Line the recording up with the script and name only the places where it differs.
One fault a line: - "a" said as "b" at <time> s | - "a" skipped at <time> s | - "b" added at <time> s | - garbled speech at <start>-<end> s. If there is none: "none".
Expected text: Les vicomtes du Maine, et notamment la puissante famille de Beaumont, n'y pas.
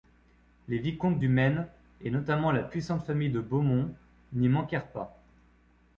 - "manquèrent" added at 4.5 s